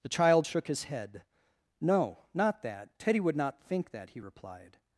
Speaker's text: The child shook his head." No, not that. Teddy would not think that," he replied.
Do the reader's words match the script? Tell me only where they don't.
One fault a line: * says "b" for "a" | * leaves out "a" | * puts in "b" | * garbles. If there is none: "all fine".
all fine